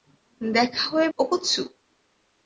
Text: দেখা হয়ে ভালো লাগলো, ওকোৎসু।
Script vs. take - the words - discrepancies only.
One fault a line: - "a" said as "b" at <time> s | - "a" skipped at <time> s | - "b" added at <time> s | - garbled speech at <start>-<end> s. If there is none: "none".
- "ভালো লাগলো" skipped at 1.1 s